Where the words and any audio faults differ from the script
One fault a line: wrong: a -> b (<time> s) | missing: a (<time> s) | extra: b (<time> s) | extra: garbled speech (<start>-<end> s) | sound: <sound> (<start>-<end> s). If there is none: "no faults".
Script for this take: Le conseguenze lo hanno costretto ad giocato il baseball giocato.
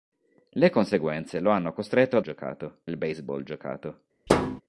sound: thud (4.3-4.6 s)